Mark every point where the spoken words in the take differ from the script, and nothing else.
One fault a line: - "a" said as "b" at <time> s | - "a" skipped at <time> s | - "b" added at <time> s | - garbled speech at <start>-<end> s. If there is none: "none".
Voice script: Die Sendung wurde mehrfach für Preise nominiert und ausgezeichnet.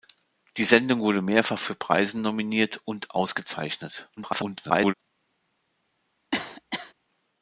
- garbled speech at 4.2-4.9 s